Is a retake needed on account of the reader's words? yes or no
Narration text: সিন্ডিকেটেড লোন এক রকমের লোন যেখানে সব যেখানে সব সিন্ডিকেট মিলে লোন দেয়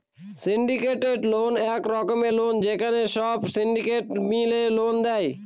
yes